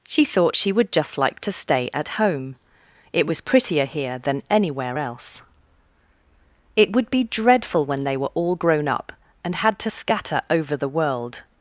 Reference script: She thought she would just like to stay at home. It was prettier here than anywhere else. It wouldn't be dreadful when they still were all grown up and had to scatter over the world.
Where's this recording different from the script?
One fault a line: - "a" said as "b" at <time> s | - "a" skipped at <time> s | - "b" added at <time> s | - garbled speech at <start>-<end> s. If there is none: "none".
- "wouldn't" said as "would" at 6.9 s
- "still" skipped at 8.2 s